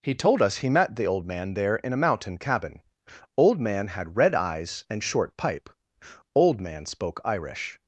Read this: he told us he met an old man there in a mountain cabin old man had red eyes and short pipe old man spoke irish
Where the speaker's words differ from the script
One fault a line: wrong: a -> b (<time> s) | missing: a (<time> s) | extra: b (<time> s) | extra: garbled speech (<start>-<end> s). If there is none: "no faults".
wrong: an -> the (0.9 s)